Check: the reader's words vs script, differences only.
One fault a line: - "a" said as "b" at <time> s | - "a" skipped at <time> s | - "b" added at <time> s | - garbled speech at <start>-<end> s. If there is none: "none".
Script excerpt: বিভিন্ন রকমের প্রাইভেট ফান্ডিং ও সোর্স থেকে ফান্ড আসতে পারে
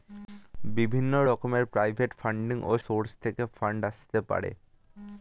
none